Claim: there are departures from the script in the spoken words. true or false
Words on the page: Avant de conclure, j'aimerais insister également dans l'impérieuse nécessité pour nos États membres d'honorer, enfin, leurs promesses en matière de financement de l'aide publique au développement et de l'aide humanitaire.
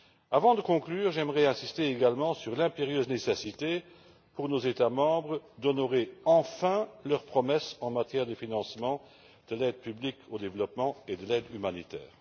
true